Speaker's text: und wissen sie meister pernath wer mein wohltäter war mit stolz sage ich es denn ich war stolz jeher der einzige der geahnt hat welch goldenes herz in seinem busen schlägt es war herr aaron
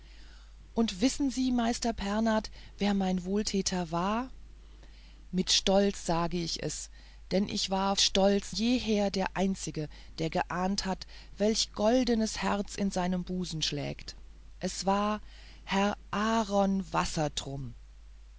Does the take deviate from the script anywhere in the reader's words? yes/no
no